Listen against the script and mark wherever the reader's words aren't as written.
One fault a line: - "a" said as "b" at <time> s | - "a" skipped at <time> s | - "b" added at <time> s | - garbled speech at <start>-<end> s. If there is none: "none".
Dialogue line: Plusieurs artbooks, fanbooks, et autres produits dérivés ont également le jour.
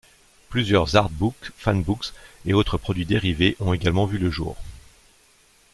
- "vu" added at 4.1 s